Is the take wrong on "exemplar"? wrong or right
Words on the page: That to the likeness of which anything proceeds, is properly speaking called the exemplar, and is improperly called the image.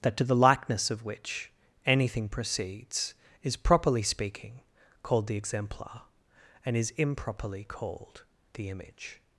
right